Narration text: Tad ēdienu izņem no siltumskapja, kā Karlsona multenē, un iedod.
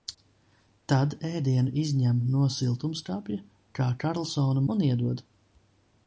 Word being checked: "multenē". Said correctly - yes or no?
no